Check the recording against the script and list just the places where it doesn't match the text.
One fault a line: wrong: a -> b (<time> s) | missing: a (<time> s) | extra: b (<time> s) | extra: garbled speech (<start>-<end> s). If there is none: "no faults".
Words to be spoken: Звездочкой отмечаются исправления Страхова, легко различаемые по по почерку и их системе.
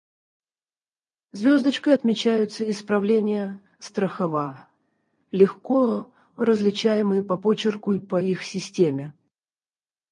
missing: по (7.4 s)
extra: по (8.0 s)